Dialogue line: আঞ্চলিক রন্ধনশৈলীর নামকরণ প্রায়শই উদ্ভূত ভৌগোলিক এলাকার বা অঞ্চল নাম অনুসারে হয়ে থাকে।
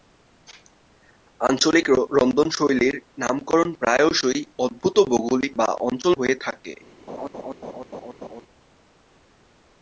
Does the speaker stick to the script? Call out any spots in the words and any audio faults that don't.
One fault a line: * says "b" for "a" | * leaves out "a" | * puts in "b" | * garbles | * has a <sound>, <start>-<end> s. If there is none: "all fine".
* leaves out "এলাকার"
* leaves out "নাম অনুসারে"
* has a laugh, 7.1-8.4 s